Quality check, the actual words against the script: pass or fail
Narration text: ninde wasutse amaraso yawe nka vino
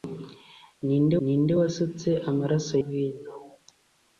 fail